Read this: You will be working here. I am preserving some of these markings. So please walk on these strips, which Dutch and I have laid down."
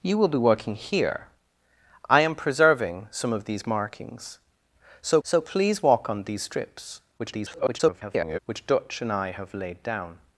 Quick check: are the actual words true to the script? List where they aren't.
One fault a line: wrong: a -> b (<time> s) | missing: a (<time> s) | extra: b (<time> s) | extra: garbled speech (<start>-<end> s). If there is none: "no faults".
extra: so (5.2 s)
extra: garbled speech (7.2-8.4 s)